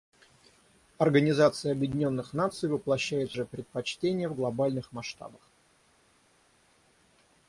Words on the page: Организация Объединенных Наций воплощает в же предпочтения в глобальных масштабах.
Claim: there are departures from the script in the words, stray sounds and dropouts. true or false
false